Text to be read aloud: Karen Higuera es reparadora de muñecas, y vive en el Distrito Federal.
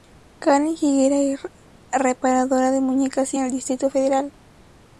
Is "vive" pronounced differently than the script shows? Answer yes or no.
yes